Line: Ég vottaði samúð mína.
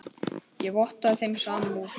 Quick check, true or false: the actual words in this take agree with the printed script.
false